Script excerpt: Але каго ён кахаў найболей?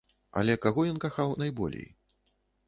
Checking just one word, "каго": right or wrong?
right